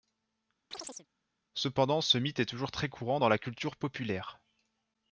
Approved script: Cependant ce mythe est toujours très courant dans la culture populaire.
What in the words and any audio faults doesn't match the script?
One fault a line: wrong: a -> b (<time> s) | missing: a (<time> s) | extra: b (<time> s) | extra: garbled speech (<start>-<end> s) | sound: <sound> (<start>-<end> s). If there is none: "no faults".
sound: chirp (0.7-1.1 s)